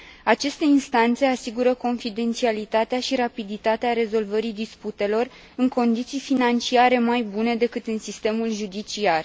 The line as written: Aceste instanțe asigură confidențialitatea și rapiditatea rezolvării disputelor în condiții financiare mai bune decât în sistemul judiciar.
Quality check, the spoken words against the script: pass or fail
pass